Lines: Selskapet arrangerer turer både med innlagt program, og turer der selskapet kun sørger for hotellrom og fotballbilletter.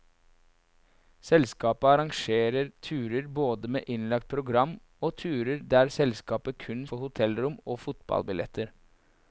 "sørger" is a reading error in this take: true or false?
true